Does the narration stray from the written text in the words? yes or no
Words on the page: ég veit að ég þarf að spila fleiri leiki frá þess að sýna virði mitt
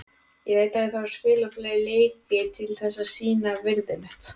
yes